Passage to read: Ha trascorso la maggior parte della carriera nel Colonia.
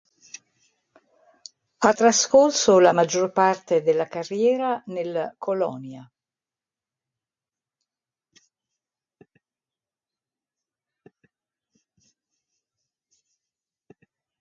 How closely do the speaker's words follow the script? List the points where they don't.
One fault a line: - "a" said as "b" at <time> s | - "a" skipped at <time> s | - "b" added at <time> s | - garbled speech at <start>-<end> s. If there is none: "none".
none